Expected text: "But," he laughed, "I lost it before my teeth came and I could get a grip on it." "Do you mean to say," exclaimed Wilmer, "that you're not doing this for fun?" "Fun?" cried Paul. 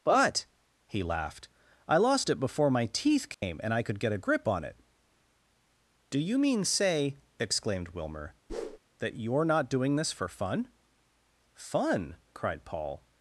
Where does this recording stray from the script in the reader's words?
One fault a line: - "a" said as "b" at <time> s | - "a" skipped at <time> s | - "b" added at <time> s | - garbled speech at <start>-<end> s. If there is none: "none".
- "to" skipped at 6.7 s